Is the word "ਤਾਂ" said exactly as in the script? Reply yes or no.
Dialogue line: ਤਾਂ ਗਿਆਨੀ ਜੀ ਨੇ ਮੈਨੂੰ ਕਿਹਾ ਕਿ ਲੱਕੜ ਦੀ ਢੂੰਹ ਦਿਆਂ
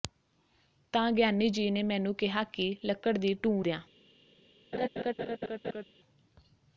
yes